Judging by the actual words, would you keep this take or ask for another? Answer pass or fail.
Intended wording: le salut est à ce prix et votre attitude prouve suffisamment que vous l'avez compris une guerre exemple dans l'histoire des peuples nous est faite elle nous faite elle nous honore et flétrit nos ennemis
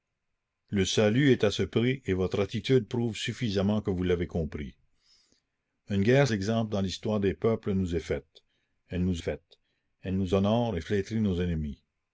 pass